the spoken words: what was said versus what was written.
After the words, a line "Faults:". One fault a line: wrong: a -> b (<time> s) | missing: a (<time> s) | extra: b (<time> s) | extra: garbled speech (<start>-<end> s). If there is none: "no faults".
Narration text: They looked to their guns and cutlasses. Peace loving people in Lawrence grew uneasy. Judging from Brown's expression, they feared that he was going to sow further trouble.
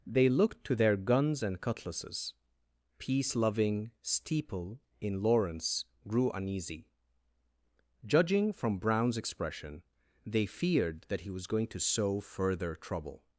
They looked to their guns and cutlasses. Peace loving steeple in Lawrence grew uneasy. Judging from Brown's expression, they feared that he was going to sow further trouble.
Faults:
wrong: people -> steeple (4.0 s)